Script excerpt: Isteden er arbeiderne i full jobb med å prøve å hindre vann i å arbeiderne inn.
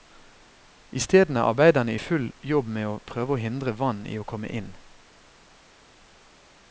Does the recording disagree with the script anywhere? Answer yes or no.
yes